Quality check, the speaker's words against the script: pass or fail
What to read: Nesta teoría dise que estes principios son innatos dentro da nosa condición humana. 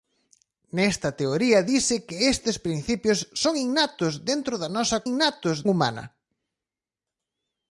fail